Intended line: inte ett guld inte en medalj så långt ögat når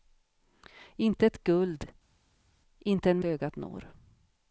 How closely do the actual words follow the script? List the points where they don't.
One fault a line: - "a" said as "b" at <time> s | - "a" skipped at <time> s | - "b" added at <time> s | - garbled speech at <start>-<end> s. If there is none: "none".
- "medalj så långt" skipped at 3.2 s